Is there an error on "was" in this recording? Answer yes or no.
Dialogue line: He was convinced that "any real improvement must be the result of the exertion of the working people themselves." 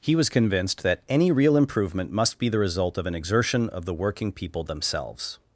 no